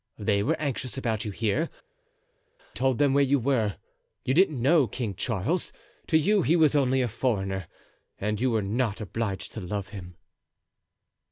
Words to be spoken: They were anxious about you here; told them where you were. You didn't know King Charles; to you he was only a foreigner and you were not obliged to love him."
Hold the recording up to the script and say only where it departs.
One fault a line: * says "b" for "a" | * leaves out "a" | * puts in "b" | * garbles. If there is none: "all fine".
all fine